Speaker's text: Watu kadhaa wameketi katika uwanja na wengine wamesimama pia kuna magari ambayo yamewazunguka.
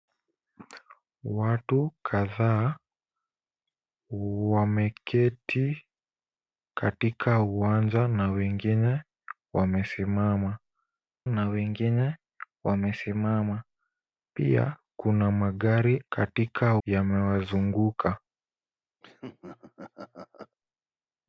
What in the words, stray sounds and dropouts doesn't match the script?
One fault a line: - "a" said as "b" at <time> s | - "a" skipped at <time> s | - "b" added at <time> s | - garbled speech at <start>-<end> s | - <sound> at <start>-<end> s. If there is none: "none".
- "na wengine wamesimama" added at 11.3 s
- "ambayo" said as "katika" at 16.1 s
- laugh at 19.0-20.6 s